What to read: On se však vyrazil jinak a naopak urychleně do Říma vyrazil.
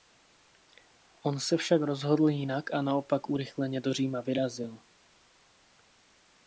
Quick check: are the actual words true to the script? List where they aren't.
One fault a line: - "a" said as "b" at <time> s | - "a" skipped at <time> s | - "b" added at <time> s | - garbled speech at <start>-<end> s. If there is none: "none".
- "vyrazil" said as "rozhodl" at 1.8 s